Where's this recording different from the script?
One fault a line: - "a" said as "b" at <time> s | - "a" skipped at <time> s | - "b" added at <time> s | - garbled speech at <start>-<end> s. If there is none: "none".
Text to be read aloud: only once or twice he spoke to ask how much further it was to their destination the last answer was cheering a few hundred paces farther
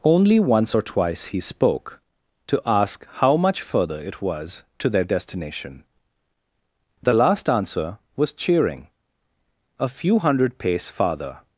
- "paces" said as "pace" at 10.6 s